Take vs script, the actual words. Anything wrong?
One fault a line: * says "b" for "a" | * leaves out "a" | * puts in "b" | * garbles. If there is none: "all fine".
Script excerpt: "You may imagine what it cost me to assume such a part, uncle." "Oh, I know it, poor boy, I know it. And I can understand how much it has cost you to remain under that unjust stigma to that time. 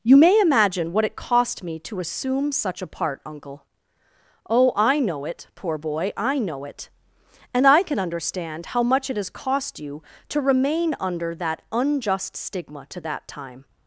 all fine